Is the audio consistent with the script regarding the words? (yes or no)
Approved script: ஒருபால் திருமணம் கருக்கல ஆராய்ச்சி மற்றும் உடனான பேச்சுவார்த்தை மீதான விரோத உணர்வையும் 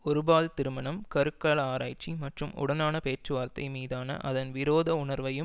no